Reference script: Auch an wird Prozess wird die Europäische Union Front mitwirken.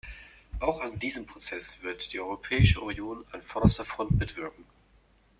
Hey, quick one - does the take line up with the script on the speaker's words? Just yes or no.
no